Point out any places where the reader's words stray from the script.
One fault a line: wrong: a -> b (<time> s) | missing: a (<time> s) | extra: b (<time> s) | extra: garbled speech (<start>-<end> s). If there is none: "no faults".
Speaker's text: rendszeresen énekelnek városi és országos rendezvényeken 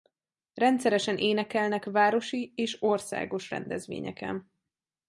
no faults